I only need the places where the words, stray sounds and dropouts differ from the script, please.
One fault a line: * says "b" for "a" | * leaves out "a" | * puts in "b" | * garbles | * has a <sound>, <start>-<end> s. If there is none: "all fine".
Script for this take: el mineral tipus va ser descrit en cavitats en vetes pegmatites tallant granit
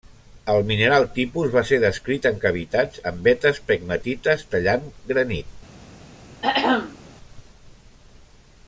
* has a throat clearing, 6.4-7.0 s